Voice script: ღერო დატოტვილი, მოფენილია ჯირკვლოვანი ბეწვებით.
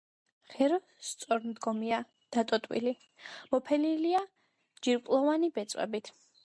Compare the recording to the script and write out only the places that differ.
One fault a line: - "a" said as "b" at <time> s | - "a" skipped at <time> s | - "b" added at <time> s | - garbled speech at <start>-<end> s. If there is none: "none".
- "სწორმდგომია" added at 1.1 s